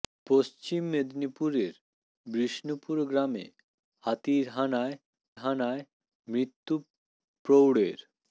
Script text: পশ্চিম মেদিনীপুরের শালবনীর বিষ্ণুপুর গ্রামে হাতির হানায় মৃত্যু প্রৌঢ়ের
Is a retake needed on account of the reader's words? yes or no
yes